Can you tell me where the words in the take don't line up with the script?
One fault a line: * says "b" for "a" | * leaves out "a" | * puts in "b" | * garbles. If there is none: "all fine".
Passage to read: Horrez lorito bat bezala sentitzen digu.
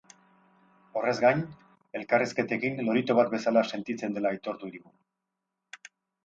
* puts in "gain elkarrizketekin"
* puts in "dela aitortu"